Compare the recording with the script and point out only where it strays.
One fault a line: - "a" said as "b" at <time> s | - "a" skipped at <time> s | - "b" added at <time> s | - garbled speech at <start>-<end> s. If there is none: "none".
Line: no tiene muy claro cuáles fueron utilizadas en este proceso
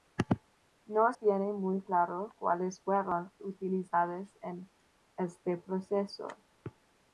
none